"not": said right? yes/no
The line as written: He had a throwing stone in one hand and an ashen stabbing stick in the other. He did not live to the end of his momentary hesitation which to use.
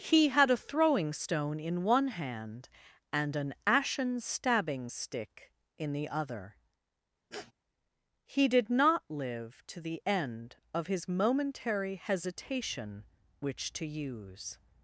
yes